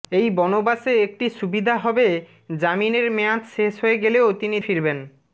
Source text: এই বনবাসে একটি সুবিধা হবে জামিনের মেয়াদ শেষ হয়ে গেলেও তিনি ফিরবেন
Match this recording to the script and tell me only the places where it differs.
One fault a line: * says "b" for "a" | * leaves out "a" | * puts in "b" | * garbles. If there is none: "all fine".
all fine